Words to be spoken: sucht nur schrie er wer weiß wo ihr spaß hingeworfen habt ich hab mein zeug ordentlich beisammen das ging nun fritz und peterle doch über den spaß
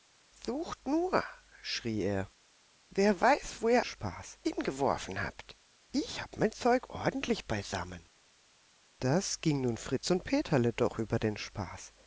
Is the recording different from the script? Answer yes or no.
no